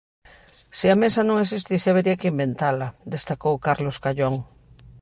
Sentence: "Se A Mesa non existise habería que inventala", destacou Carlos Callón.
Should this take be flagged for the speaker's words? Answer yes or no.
no